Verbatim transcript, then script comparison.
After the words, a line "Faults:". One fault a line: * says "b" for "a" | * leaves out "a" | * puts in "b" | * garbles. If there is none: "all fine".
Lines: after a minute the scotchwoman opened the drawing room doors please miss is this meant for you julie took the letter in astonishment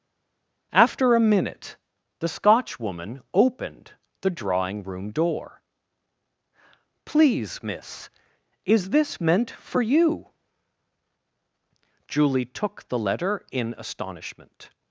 after a minute the scotchwoman opened the drawing room door please miss is this meant for you julie took the letter in astonishment
Faults:
* says "door" for "doors"